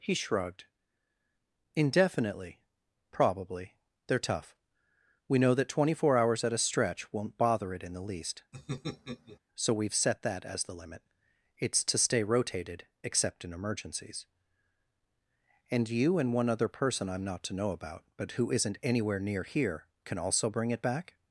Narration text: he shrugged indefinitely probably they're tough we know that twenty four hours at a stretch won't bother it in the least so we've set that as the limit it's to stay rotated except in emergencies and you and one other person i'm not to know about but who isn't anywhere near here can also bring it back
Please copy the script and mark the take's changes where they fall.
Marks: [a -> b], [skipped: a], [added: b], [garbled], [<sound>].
he shrugged indefinitely probably they're tough we know that twenty four hours at a stretch won't bother it in the least [laugh] so we've set that as the limit it's to stay rotated except in emergencies and you and one other person i'm not to know about but who isn't anywhere near here can also bring it back